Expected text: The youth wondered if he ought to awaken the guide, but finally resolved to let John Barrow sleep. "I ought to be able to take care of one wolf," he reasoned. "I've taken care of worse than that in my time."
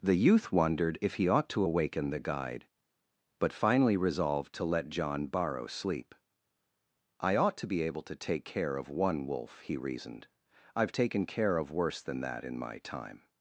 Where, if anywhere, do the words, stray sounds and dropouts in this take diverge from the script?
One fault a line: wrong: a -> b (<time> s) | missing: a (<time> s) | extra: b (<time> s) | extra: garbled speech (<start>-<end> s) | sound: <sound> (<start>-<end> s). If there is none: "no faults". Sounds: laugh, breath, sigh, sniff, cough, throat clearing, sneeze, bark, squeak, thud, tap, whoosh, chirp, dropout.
no faults